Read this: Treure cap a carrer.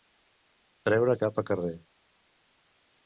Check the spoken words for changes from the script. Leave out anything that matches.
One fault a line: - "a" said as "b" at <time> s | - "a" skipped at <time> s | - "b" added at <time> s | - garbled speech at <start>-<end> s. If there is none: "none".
none